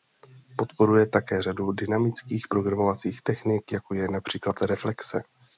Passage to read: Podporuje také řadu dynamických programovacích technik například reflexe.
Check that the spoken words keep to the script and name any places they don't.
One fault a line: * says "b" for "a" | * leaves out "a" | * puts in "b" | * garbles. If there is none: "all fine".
* puts in "jako je"